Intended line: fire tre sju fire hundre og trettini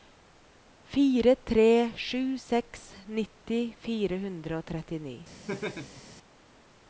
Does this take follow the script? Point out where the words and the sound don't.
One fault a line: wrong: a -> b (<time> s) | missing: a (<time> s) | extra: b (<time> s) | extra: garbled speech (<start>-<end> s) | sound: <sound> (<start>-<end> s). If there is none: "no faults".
extra: seks nitti (2.5 s)
sound: laugh (5.5-6.0 s)